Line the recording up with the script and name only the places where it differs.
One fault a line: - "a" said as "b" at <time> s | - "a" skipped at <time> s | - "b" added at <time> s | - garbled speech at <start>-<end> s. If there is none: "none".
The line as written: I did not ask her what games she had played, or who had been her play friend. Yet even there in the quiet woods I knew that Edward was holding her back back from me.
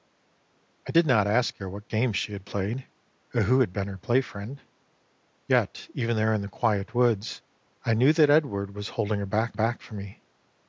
none